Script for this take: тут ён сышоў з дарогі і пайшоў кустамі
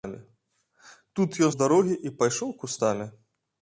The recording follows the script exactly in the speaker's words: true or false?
false